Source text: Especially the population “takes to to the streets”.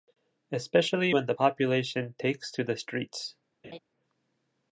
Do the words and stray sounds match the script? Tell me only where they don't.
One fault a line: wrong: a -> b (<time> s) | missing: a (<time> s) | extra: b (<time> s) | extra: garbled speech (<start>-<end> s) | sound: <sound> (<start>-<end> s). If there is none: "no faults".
extra: when (1.1 s)
missing: to (2.6 s)
sound: laugh (3.6-3.8 s)